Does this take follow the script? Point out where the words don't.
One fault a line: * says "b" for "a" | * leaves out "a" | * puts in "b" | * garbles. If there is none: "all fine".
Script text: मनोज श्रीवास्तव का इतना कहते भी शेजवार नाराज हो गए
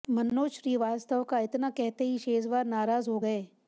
* says "ही" for "भी"